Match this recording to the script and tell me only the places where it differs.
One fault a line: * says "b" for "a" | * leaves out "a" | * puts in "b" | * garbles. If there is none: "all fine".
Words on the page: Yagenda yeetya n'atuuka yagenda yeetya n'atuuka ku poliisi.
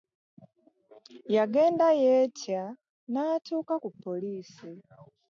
* leaves out "yagenda yeetya n'atuuka"